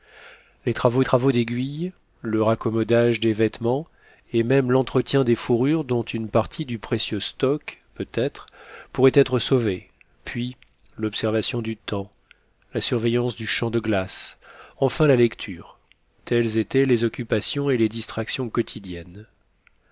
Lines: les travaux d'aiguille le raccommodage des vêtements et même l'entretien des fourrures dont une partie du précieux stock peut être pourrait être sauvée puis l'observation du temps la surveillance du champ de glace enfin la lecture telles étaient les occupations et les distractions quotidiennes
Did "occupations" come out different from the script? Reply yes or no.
no